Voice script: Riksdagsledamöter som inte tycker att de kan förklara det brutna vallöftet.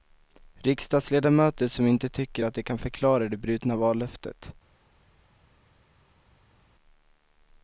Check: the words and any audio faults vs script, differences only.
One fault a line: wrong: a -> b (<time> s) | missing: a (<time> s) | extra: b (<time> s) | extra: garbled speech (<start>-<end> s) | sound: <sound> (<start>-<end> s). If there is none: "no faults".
no faults